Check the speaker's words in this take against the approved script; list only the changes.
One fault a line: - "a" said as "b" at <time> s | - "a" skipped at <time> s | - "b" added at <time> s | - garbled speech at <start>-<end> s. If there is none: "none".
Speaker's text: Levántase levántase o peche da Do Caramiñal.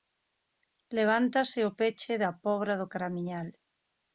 - "levántase" skipped at 1.6 s
- "Pobra" added at 2.4 s